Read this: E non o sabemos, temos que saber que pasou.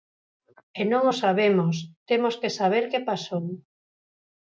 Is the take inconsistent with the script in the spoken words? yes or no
no